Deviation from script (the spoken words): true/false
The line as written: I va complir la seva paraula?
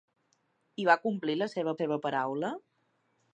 true